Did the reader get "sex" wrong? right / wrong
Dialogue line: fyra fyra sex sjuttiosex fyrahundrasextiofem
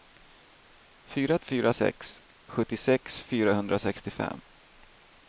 right